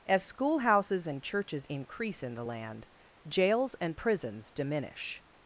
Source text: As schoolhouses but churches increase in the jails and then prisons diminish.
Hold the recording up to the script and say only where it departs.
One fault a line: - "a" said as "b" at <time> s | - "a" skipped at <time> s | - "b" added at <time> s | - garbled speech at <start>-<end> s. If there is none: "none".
- "but" said as "and" at 1.1 s
- "land" added at 2.4 s
- "then" skipped at 4.0 s